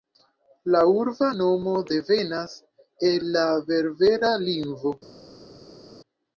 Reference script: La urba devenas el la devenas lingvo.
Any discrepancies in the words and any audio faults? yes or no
yes